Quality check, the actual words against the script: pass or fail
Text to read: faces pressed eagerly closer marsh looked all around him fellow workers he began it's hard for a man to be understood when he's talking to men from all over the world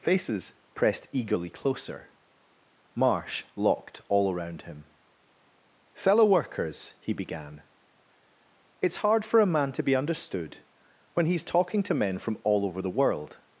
fail